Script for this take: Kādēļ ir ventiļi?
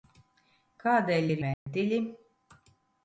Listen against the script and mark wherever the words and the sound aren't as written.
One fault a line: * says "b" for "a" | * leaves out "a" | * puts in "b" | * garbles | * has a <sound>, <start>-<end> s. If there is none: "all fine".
* has a dropout, 1.5-1.7 s